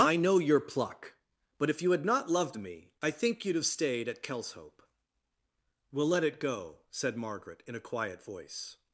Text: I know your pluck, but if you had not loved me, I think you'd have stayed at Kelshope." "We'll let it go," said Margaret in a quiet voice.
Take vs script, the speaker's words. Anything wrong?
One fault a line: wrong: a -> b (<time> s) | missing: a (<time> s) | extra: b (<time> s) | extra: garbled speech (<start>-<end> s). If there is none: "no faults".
no faults